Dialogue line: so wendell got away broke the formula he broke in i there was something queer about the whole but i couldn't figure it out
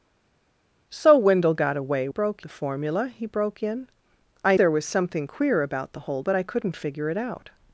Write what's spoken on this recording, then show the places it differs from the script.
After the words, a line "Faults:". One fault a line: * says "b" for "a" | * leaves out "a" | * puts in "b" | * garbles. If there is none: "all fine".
so wendell got away broke the formula he broke in i there was something queer about the whole but i couldn't figure it out
Faults:
all fine